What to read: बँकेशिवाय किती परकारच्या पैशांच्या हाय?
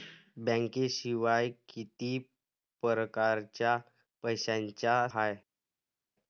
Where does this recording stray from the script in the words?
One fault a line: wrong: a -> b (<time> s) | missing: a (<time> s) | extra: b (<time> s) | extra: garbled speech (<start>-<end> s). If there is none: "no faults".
no faults